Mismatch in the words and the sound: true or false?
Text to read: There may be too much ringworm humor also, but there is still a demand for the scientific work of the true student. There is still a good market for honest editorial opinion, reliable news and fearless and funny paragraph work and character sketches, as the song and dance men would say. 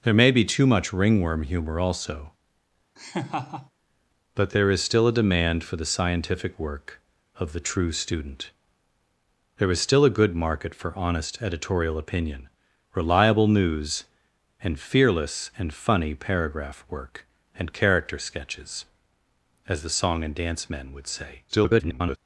true